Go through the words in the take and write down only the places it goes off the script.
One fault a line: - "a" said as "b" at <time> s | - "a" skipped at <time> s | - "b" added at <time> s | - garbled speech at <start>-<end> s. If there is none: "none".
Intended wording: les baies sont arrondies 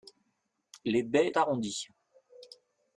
- "sont" skipped at 1.4 s